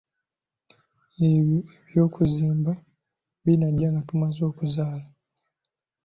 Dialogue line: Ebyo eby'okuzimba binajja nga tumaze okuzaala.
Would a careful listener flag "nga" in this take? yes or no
no